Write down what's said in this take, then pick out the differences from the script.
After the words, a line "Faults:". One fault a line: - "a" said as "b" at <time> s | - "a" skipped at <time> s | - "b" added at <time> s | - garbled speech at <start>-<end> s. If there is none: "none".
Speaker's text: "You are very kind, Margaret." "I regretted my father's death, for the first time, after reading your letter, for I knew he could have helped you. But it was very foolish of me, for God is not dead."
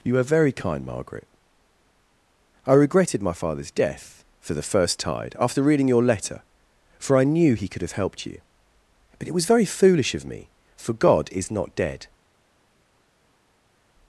"You are very kind, Margaret." "I regretted my father's death, for the first tide, after reading your letter, for I knew he could have helped you. But it was very foolish of me, for God is not dead."
Faults:
- "time" said as "tide" at 5.0 s